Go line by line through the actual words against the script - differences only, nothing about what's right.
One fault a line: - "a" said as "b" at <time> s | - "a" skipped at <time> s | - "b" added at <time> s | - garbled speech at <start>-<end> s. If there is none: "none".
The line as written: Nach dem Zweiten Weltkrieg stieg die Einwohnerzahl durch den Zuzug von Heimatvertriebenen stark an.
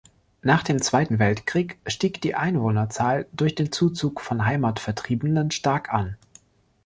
none